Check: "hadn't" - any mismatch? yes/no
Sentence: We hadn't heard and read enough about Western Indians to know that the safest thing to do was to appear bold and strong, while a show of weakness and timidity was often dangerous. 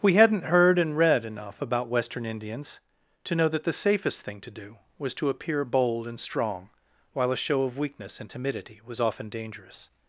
no